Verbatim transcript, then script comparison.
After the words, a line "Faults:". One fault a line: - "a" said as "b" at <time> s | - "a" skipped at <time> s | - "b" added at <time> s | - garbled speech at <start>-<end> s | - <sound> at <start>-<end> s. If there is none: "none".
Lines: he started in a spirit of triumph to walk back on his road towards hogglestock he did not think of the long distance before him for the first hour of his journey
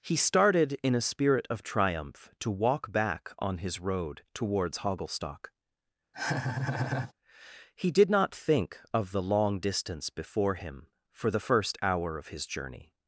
he started in a spirit of triumph to walk back on his road towards hogglestock he did not think of the long distance before him for the first hour of his journey
Faults:
- laugh at 6.1-7.1 s